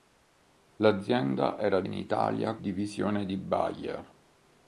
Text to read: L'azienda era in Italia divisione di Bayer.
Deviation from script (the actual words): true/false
false